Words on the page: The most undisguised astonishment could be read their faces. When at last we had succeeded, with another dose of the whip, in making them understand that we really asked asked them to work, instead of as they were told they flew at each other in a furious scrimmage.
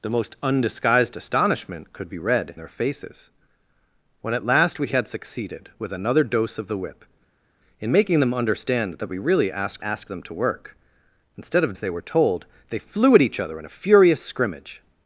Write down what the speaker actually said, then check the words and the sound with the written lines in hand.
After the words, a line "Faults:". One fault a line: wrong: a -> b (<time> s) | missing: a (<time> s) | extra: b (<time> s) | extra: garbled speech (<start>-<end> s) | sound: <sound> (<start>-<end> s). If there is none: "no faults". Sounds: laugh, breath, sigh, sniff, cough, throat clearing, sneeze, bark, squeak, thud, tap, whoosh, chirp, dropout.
The most undisguised astonishment could be read their faces. When at last we had succeeded, with another dose of the whip, in making them understand that we really asked asked them to work, instead of as they were told they flew at each other in a furious scrimmage.
Faults:
no faults